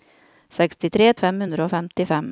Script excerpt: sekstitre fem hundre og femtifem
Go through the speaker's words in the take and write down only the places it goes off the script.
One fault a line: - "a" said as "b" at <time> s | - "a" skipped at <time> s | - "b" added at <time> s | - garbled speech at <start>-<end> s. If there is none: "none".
none